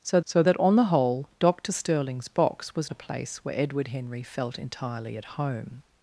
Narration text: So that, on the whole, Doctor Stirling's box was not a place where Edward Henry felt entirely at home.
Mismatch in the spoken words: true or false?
true